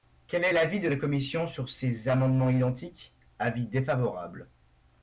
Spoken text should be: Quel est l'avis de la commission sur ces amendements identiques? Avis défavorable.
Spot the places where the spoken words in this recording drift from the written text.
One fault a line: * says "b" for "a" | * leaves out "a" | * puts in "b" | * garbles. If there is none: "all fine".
all fine